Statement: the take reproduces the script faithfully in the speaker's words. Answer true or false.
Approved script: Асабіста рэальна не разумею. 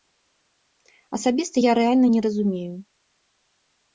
false